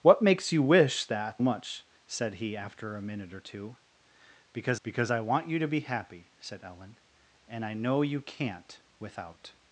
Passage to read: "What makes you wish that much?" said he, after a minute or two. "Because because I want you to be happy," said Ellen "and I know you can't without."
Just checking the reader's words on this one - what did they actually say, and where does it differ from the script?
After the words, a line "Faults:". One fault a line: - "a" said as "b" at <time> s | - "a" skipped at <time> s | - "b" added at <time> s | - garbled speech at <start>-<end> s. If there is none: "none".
"What makes you wish that much?" said he, after a minute or two. "Because because I want you to be happy," said Ellen "and I know you can't without."
Faults:
none